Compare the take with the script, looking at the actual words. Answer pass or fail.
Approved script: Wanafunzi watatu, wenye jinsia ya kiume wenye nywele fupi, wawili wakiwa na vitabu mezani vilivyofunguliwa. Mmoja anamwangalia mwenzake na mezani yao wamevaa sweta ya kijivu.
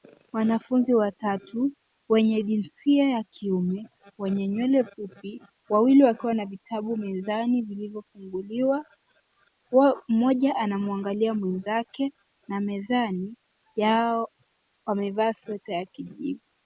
pass